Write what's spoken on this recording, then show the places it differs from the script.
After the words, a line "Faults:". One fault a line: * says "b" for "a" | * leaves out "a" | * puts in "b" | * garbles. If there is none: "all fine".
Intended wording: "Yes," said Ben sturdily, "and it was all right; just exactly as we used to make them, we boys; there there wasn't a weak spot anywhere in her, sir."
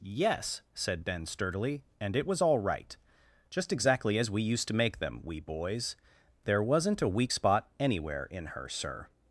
"Yes," said Ben sturdily, "and it was all right; just exactly as we used to make them, we boys; there wasn't a weak spot anywhere in her, sir."
Faults:
* leaves out "there"